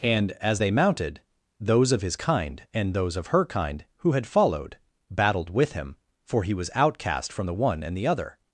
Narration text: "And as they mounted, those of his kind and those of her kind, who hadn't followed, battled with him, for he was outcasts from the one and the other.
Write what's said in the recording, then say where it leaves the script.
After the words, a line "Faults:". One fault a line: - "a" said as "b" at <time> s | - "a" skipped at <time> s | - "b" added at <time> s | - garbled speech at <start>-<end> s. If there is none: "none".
"And as they mounted, those of his kind and those of her kind, who had followed, battled with him, for he was outcast from the one and the other.
Faults:
- "hadn't" said as "had" at 4.1 s
- "outcasts" said as "outcast" at 6.8 s